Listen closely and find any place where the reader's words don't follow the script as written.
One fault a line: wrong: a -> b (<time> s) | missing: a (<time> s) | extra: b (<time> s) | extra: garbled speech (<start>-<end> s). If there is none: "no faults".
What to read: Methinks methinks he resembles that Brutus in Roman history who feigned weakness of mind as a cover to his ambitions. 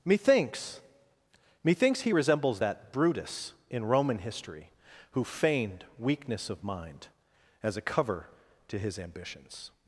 no faults